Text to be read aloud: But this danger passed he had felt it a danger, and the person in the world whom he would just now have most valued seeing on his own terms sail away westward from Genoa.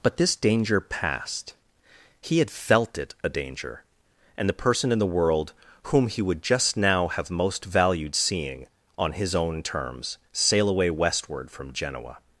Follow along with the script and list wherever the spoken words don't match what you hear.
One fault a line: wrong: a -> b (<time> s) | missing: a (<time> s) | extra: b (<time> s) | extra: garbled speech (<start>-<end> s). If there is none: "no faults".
no faults